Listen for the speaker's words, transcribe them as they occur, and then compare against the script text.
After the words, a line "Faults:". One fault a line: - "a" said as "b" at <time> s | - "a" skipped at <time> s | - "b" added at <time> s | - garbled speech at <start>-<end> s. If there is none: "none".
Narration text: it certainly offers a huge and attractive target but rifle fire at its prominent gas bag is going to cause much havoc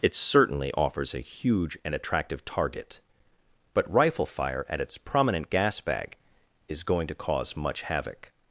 it certainly offers a huge and attractive target but rifle fire at its prominent gas bag is going to cause much havoc
Faults:
none